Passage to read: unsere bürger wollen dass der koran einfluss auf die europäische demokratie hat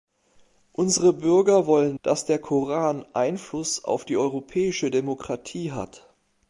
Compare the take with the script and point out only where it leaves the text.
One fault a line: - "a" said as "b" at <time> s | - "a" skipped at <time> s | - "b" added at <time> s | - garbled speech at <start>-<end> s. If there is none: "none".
none